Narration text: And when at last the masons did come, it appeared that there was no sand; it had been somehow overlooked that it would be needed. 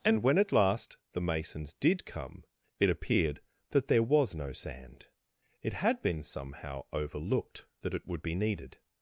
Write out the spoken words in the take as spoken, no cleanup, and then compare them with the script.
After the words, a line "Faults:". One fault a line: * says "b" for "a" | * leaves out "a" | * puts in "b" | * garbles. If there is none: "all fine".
And when at last the masons did come, it appeared that there was no sand; it had been somehow overlooked that it would be needed.
Faults:
all fine